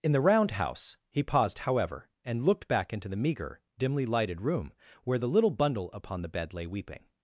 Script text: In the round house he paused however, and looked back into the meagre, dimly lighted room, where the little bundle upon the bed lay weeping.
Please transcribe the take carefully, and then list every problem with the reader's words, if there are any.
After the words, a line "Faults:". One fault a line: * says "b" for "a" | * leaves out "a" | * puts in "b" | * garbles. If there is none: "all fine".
In the round house he paused however, and looked back into the meagre, dimly lighted room, where the little bundle upon the bed lay weeping.
Faults:
all fine